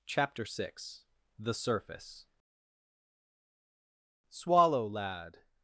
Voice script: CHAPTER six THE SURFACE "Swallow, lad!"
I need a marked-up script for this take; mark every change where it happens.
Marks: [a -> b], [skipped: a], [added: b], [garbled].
CHAPTER six THE SURFACE "Swallow, lad!"